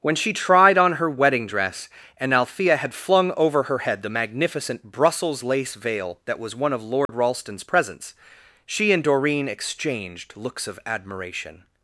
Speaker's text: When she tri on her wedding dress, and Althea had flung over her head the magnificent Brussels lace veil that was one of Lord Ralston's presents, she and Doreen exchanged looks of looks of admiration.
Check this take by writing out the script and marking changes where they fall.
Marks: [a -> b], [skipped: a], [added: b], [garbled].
When she [tri -> tried] on her wedding dress, and Althea had flung over her head the magnificent Brussels lace veil that was one of Lord Ralston's presents, she and Doreen exchanged looks of [skipped: looks of] admiration.